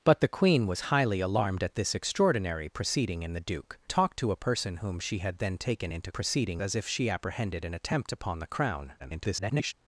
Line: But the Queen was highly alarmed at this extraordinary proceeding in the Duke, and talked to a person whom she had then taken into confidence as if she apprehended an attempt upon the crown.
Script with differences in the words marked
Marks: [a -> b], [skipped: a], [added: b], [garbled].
But the Queen was highly alarmed at this extraordinary proceeding in the Duke, [skipped: and] talked to a person whom she had then taken into [confidence -> proceeding] as if she apprehended an attempt upon the crown. [garbled]